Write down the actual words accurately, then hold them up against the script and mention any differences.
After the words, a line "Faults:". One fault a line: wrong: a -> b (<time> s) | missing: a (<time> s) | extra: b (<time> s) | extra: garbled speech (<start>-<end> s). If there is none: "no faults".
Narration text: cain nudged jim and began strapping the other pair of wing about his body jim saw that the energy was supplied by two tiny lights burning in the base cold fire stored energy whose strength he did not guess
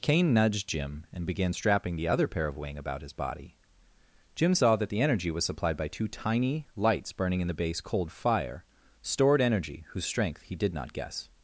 cain nudged jim and began strapping the other pair of wing about his body jim saw that the energy was supplied by two tiny lights burning in the base cold fire stored energy whose strength he did not guess
Faults:
no faults